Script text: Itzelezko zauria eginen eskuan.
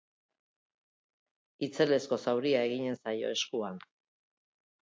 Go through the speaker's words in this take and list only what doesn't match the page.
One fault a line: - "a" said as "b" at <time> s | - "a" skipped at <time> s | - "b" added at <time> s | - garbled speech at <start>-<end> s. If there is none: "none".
- "zaio" added at 3.0 s